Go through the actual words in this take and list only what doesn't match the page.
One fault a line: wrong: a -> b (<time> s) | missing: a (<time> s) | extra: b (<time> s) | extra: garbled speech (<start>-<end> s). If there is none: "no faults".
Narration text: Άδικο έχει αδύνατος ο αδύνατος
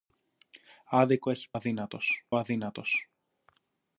no faults